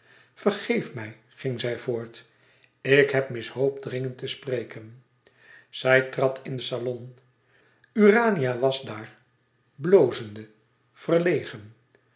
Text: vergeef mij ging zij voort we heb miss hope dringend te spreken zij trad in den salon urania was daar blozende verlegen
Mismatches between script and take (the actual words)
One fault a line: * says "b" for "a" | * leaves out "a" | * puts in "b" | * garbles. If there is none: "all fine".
* says "ik" for "we"